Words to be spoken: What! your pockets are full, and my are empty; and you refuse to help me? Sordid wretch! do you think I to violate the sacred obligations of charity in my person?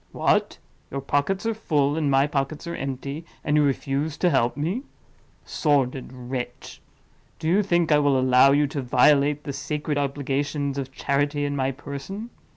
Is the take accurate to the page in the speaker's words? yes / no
no